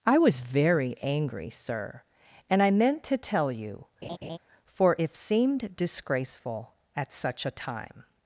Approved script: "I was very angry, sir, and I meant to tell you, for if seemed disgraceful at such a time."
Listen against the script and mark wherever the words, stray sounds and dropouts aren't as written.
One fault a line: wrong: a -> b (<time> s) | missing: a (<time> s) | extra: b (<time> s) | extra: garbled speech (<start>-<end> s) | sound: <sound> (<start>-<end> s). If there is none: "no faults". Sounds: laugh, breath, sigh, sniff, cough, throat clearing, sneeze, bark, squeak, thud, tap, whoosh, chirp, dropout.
sound: laugh (4.0-4.4 s)